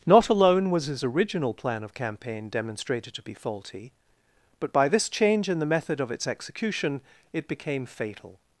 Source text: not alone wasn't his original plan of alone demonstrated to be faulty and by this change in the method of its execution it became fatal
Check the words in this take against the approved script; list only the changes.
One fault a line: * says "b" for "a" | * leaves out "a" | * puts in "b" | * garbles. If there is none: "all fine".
* says "was" for "wasn't"
* says "campaign" for "alone"
* says "but" for "and"